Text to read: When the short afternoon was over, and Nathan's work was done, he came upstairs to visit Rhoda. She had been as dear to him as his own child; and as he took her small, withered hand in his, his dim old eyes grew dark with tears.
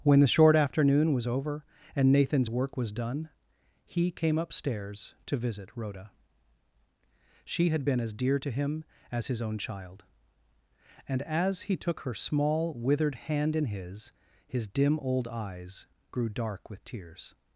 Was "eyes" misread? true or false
false